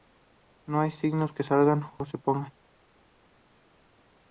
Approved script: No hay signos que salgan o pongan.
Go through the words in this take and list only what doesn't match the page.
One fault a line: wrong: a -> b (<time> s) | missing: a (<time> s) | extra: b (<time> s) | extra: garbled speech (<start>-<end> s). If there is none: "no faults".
extra: se (2.0 s)